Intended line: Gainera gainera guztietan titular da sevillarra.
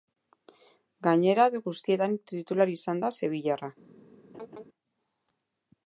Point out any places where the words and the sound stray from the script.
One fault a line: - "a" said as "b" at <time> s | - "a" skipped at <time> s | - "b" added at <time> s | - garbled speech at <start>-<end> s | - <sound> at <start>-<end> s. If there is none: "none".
- "gainera" skipped at 1.4 s
- "izan" added at 2.8 s
- laugh at 4.3-4.6 s